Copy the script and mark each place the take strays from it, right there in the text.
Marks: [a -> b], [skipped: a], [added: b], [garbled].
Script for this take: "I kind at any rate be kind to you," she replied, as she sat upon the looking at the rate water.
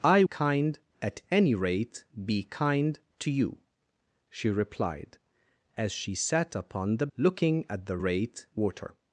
"I kind at any rate be kind to you," she replied, as she sat upon the looking at the rate water.